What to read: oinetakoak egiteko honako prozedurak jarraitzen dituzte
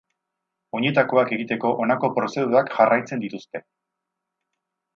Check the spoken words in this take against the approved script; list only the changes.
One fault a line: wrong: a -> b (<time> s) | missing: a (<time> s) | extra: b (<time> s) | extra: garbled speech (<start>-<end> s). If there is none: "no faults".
no faults